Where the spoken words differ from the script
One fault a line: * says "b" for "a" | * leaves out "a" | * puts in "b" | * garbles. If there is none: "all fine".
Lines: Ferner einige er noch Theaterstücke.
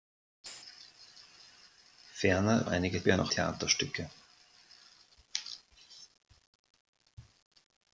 all fine